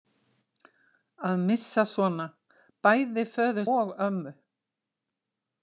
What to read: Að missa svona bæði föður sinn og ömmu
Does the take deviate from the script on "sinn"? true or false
true